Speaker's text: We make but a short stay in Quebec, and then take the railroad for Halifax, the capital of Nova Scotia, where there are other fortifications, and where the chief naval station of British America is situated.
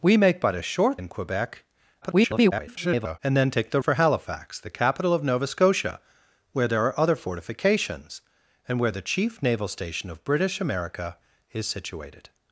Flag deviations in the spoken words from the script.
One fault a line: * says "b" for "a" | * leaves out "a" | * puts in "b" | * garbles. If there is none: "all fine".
* leaves out "stay"
* garbles
* leaves out "railroad"